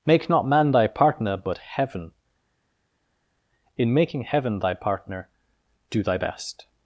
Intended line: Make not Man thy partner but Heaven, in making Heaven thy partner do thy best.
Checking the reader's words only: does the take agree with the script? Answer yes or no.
yes